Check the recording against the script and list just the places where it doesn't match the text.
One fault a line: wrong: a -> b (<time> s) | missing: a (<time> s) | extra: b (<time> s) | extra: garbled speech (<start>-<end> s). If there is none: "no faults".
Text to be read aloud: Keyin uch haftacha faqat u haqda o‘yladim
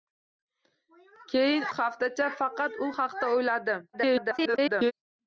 missing: uch (1.7 s)
extra: garbled speech (3.9-4.9 s)